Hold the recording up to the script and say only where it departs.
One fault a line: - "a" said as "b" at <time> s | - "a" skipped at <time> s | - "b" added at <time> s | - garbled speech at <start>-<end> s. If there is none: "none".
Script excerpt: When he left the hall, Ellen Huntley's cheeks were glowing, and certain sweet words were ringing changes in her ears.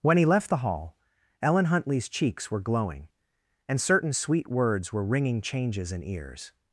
- "her" skipped at 6.0 s